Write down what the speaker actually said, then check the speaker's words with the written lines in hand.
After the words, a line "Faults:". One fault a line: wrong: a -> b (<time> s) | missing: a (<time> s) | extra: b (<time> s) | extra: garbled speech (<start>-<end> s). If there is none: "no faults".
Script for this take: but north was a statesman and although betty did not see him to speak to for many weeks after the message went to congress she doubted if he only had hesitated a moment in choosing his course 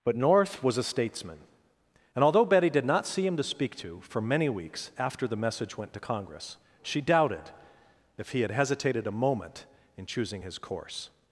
but north was a statesman and although betty did not see him to speak to for many weeks after the message went to congress she doubted if he had hesitated a moment in choosing his course
Faults:
missing: only (8.4 s)